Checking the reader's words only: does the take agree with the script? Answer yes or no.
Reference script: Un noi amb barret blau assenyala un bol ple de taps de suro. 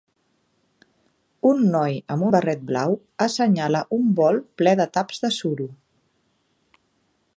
yes